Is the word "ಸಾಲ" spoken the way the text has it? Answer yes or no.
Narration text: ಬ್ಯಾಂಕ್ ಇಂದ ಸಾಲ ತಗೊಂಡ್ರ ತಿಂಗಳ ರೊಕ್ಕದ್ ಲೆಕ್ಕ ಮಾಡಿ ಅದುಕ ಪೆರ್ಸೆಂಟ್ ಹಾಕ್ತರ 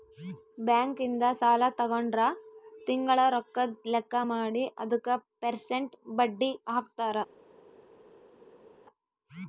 yes